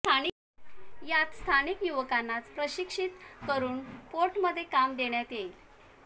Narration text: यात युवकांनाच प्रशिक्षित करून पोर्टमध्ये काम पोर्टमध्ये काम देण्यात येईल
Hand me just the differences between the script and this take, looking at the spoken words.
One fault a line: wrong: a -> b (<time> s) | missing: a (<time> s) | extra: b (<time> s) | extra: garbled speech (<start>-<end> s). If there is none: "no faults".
extra: स्थानिक (1.3 s)
missing: पोर्टमध्ये काम (5.0 s)